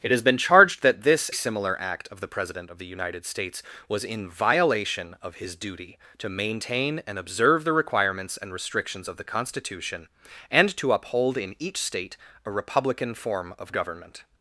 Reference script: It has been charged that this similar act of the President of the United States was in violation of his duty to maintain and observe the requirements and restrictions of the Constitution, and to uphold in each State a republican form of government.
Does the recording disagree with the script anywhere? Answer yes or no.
no